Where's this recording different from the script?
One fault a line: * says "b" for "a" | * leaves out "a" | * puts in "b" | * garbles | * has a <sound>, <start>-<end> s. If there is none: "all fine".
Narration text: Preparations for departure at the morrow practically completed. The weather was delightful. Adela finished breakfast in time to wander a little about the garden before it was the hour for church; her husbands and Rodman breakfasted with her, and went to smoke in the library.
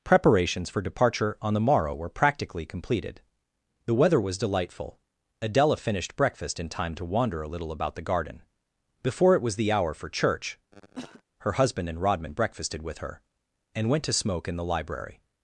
* says "on" for "at"
* puts in "were"
* has a cough, 10.7-11.2 s
* says "husband" for "husbands"